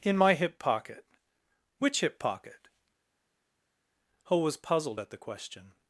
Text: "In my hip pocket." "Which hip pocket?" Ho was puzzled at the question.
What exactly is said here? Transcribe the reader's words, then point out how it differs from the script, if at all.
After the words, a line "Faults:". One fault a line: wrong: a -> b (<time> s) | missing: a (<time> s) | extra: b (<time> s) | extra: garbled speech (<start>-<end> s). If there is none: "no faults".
"In my hip pocket." "Which hip pocket?" Ho was puzzled at the question.
Faults:
no faults